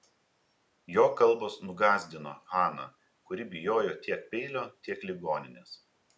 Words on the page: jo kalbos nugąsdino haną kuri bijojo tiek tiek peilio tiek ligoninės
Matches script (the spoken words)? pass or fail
fail